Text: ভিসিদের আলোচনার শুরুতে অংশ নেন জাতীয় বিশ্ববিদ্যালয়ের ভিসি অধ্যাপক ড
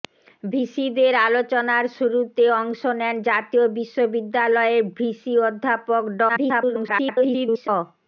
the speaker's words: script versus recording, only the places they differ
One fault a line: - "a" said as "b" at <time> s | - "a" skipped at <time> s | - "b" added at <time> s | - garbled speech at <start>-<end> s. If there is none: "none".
- garbled speech at 6.3-7.7 s